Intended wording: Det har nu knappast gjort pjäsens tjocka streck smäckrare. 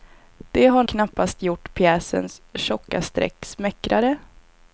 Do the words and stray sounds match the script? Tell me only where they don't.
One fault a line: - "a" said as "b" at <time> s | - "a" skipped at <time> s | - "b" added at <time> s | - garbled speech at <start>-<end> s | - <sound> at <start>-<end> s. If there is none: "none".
- "nu" skipped at 0.8 s